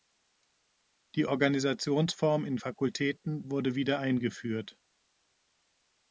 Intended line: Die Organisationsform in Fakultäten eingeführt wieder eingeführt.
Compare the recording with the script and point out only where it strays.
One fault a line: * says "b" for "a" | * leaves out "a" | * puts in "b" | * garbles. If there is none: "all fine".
* says "wurde" for "eingeführt"